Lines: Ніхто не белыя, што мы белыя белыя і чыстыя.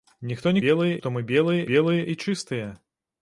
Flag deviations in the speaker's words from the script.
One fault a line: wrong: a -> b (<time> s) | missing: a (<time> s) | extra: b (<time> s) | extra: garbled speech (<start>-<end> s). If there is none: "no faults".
no faults